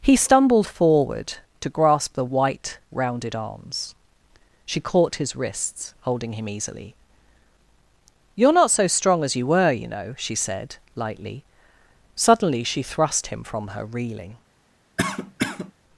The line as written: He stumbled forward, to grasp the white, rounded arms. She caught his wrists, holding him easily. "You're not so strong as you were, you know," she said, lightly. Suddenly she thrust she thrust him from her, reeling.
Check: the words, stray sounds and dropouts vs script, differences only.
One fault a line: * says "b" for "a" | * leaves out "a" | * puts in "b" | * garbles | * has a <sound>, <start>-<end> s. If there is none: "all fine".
* leaves out "she thrust"
* has a cough, 15.0-15.7 s